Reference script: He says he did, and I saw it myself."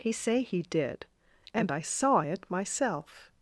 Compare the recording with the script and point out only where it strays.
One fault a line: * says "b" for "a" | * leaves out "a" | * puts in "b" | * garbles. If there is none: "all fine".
* says "say" for "says"